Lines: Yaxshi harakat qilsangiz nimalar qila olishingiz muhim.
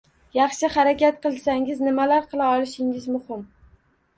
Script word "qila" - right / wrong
right